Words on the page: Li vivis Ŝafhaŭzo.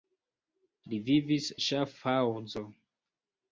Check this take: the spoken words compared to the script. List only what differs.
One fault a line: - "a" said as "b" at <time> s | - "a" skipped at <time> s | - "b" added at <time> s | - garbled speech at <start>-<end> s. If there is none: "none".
none